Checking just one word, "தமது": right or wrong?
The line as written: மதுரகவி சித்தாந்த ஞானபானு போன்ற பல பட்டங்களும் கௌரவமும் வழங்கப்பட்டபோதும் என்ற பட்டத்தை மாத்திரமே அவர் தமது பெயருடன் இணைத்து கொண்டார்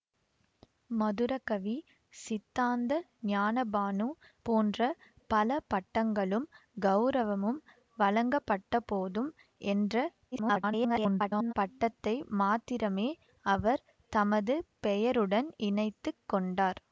right